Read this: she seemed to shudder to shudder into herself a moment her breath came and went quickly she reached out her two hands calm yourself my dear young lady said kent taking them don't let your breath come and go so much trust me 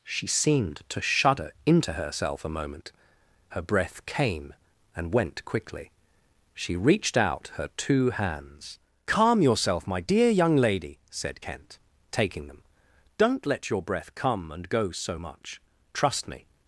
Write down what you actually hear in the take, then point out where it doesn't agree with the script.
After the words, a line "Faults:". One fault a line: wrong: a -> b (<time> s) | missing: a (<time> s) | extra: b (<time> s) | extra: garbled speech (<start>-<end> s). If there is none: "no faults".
she seemed to shudder into herself a moment her breath came and went quickly she reached out her two hands calm yourself my dear young lady said kent taking them don't let your breath come and go so much trust me
Faults:
missing: to shudder (1.5 s)